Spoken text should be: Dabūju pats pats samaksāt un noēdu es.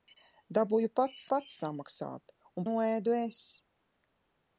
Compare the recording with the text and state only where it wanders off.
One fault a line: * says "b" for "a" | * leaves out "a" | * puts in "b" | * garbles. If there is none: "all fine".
all fine